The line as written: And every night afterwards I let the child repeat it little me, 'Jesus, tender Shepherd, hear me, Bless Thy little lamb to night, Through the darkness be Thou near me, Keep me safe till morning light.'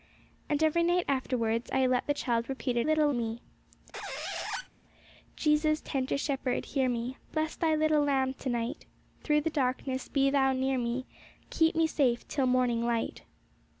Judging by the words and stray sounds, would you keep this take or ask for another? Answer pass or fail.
fail